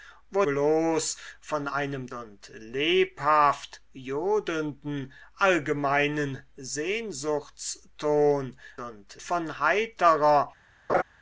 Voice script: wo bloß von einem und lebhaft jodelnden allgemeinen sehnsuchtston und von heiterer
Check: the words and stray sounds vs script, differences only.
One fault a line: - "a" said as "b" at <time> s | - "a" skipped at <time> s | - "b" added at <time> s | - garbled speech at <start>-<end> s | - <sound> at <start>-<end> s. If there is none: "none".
- laugh at 10.9-11.0 s